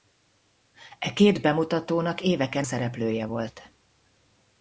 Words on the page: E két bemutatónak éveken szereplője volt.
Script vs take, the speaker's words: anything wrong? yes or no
no